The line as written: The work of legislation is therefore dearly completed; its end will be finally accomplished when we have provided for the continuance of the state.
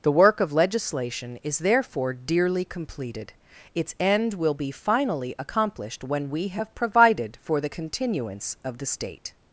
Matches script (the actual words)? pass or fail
pass